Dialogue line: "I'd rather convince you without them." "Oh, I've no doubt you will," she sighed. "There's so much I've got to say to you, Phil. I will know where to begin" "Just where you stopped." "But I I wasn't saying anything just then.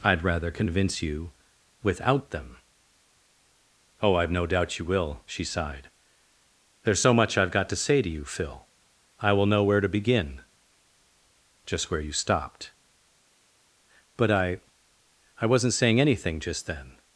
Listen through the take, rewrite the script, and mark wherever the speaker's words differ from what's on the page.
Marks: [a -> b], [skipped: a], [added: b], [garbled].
"I'd rather convince you without them." "Oh, I've no doubt you will," she sighed. "There's so much I've got to say to you, Phil. I will know where to begin" "Just where you stopped." "But I I wasn't saying anything just then.